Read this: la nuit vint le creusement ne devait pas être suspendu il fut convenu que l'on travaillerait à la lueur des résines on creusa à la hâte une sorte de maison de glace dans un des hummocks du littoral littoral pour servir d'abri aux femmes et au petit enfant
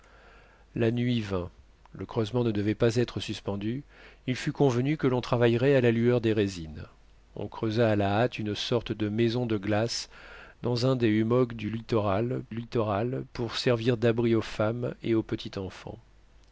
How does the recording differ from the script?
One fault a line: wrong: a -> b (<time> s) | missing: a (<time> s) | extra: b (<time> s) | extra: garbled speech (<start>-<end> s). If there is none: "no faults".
no faults